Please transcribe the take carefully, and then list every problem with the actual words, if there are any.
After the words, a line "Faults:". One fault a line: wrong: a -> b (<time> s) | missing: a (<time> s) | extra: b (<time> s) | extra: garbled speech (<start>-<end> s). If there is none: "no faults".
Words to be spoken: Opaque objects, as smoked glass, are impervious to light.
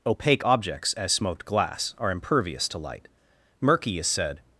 Opaque objects, as smoked glass, are impervious to light. Murky is said
Faults:
extra: Murky is said (3.6 s)